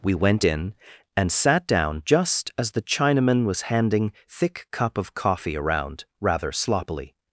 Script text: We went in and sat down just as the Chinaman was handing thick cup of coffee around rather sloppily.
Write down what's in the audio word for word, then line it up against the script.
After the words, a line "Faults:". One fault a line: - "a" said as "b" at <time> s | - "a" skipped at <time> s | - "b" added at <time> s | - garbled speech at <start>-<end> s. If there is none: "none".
We went in and sat down just as the Chinaman was handing thick cup of coffee around rather sloppily.
Faults:
none